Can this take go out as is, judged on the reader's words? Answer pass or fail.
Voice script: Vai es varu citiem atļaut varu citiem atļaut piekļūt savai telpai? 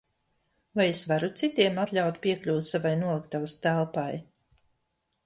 fail